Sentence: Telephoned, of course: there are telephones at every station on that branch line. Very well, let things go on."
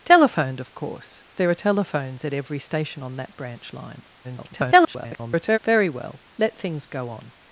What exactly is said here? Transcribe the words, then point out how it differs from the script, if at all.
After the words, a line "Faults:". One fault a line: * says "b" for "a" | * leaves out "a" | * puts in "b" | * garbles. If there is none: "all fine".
Telephoned, of course: there are telephones at every station on that branch line. [garbled] Very well, let things go on."
Faults:
* garbles